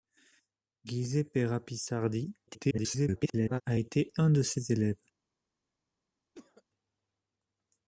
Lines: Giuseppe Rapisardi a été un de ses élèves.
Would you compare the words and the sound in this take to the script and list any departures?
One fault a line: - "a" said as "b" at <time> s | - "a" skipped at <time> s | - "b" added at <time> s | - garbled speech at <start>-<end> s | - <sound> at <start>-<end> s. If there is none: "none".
- garbled speech at 2.5-3.6 s
- cough at 6.3-6.6 s